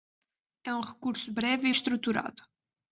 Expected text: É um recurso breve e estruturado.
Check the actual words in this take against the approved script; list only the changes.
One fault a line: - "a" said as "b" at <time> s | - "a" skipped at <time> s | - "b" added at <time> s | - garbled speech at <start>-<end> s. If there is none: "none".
none